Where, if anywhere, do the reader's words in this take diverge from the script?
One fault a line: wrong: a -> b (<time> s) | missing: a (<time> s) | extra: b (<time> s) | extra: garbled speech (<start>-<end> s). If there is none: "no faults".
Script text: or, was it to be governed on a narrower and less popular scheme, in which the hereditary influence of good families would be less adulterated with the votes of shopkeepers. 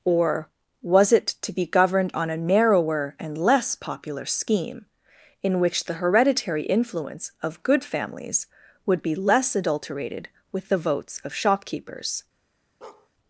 no faults